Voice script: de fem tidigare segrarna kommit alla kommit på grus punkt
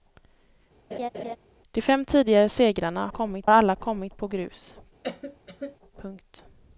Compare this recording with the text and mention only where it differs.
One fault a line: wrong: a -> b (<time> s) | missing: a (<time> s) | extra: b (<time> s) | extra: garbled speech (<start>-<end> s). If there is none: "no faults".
no faults